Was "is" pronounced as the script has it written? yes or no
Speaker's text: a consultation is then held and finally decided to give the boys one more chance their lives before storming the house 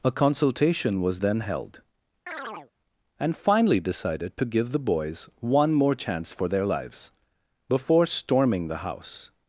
no